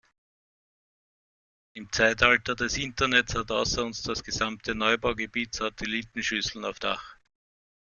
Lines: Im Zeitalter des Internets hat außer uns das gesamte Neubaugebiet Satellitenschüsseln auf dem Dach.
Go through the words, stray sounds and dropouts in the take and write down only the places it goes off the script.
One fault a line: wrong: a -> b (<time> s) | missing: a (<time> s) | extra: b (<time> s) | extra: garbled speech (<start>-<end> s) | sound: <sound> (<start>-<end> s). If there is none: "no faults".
missing: dem (6.8 s)